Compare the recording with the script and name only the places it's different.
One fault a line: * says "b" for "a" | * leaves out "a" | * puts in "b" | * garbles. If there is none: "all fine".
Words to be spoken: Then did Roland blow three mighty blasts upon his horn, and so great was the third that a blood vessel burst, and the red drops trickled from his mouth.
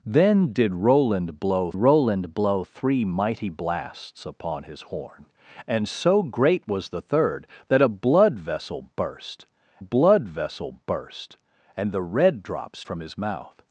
* puts in "Roland blow"
* puts in "blood vessel burst"
* leaves out "trickled"